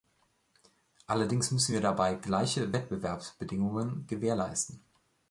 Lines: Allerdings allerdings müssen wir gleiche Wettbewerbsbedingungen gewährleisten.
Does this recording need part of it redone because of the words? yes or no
yes